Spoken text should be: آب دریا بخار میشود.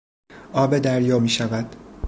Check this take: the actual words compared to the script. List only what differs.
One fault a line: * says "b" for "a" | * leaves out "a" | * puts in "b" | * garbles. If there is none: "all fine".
* leaves out "بخار"